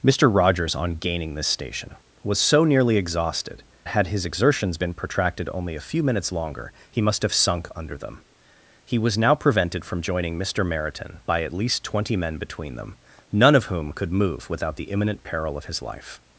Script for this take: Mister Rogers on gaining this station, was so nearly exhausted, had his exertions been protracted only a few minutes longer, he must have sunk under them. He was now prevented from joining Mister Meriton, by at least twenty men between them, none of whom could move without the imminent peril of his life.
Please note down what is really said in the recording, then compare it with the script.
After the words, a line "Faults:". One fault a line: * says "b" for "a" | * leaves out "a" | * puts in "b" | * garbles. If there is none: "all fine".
Mister Rogers on gaining this station, was so nearly exhausted, had his exertions been protracted only a few minutes longer, he must have sunk under them. He was now prevented from joining Mister Meriton, by at least twenty men between them, none of whom could move without the imminent peril of his life.
Faults:
all fine